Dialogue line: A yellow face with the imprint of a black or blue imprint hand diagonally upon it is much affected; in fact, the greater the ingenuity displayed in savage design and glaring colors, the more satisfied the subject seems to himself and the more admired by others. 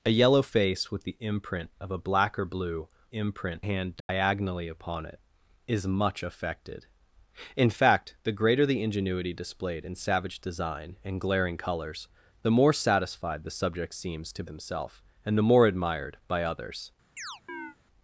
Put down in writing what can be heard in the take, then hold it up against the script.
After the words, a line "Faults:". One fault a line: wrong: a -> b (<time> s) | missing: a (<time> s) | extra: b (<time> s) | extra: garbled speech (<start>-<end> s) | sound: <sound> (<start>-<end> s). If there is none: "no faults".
A yellow face with the imprint of a black or blue imprint hand diagonally upon it is much affected; in fact, the greater the ingenuity displayed in savage design and glaring colors, the more satisfied the subject seems to himself and the more admired by others.
Faults:
sound: dropout (4.0-4.1 s)
sound: chirp (17.2-17.8 s)